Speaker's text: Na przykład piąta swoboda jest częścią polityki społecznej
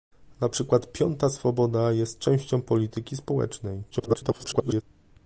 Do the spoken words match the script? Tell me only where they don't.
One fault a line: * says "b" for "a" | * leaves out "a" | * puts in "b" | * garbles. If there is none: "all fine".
* garbles